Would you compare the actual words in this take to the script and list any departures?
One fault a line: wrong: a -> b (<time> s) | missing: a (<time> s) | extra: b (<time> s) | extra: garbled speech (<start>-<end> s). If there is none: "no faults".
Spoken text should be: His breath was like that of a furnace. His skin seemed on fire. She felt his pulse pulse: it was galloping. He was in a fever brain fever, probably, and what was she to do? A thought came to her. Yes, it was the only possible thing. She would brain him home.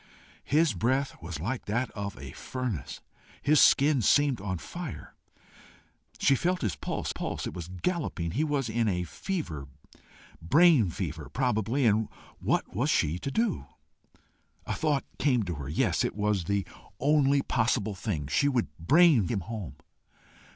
no faults